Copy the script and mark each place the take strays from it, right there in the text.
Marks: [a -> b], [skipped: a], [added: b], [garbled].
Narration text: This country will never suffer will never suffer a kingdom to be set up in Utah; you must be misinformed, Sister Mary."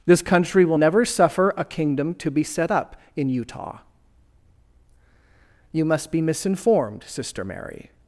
This country will never suffer [skipped: will never suffer] a kingdom to be set up in Utah; you must be misinformed, Sister Mary."